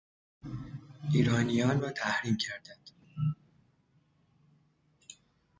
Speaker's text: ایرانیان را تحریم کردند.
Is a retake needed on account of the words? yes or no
no